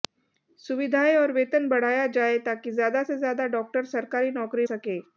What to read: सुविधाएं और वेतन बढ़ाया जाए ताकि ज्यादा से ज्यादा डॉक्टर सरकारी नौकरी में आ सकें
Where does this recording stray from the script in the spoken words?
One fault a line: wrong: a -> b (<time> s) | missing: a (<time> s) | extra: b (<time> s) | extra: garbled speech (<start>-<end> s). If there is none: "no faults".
missing: में आ (4.7 s)